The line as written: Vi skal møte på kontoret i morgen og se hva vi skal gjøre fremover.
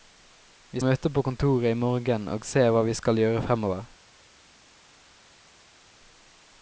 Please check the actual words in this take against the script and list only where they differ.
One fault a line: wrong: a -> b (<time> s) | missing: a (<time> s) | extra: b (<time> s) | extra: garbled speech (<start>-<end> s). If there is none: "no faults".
missing: skal (0.8 s)